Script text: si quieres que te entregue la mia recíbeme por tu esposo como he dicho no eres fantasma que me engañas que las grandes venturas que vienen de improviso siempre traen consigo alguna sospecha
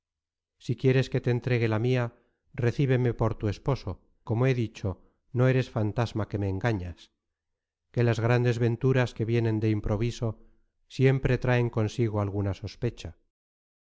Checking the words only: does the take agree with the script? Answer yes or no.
yes